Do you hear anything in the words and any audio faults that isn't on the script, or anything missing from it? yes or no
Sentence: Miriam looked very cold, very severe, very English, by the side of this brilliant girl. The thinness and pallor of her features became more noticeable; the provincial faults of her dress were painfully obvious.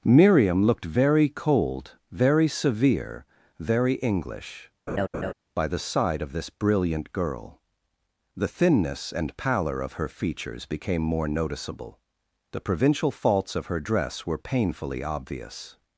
yes